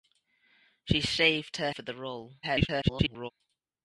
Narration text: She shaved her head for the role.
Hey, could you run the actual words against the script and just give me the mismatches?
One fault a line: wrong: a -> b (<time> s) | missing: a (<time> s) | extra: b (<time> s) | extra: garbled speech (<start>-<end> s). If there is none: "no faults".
missing: head (1.7 s)
extra: garbled speech (2.4-3.3 s)